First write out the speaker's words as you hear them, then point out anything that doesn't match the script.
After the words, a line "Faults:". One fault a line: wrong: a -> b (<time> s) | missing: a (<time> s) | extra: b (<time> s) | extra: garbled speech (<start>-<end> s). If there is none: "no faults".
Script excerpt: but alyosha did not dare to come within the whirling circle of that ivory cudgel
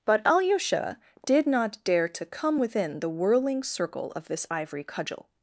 but alyosha did not dare to come within the whirling circle of this ivory cudgel
Faults:
wrong: that -> this (4.3 s)